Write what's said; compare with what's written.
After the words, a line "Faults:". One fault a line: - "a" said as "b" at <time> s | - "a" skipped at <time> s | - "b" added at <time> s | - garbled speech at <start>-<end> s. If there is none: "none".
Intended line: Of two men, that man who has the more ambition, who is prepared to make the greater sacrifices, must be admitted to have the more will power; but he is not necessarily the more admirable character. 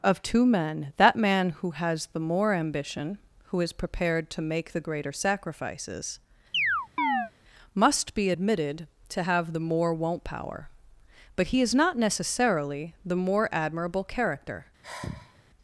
Of two men, that man who has the more ambition, who is prepared to make the greater sacrifices, must be admitted to have the more won't power; but he is not necessarily the more admirable character.
Faults:
- "will" said as "won't" at 9.9 s